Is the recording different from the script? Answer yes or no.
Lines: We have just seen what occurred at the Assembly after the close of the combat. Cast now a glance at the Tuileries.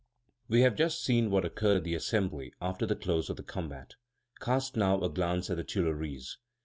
no